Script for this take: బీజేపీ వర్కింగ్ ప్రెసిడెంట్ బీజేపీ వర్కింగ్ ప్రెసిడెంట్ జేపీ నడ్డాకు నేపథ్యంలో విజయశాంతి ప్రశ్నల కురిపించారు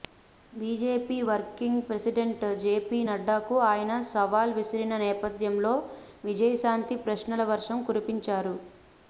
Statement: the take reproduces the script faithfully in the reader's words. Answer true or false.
false